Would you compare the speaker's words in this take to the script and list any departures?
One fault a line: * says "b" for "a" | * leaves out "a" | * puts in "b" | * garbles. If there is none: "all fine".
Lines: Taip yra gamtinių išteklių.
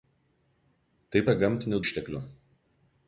all fine